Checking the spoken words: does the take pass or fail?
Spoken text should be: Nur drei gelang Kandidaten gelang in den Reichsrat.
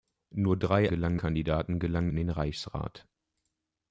pass